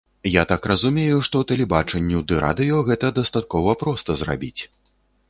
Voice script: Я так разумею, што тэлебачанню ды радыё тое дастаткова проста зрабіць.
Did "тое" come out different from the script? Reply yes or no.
yes